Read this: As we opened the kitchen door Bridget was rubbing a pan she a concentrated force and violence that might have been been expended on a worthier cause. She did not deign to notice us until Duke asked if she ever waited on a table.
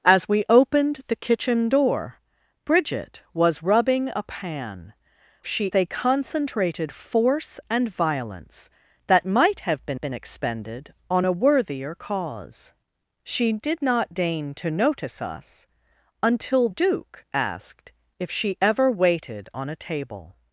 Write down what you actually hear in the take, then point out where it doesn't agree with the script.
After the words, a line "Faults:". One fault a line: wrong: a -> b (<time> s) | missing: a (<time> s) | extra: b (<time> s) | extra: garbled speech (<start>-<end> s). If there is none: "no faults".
As we opened the kitchen door Bridget was rubbing a pan she a concentrated force and violence that might have been been expended on a worthier cause. She did not deign to notice us until Duke asked if she ever waited on a table.
Faults:
no faults